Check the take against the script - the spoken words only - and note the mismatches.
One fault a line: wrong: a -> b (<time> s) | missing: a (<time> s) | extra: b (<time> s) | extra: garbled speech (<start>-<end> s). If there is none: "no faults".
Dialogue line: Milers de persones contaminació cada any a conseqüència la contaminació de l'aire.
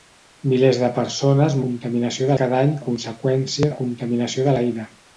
no faults